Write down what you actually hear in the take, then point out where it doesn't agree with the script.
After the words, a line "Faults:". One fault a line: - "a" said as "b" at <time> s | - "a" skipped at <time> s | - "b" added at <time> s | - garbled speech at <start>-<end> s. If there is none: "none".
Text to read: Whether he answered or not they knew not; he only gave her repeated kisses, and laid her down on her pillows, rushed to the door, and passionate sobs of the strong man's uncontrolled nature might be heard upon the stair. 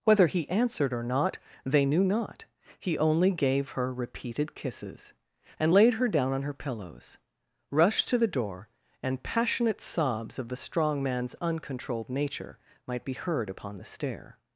Whether he answered or not they knew not; he only gave her repeated kisses, and laid her down on her pillows, rushed to the door, and passionate sobs of the strong man's uncontrolled nature might be heard upon the stair.
Faults:
none